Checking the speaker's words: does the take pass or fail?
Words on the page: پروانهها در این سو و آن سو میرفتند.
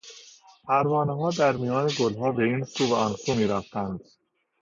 fail